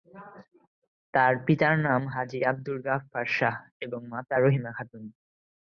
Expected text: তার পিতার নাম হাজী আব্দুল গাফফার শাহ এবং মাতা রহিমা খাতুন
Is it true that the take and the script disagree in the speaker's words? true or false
false